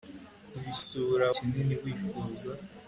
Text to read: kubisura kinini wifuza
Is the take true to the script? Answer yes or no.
yes